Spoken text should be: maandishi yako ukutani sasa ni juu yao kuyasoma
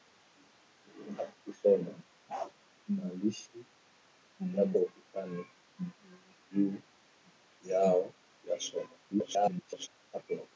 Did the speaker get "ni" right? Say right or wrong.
wrong